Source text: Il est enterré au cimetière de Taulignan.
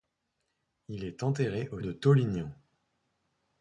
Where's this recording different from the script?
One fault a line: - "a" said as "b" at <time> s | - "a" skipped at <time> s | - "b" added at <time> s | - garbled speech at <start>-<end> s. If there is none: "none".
- "cimetière" skipped at 1.8 s